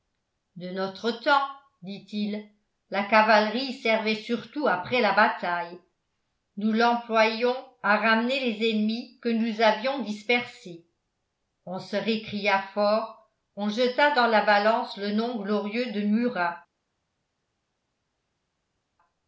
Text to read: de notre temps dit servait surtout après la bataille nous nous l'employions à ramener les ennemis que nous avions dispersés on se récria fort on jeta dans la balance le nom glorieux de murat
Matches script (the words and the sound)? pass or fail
fail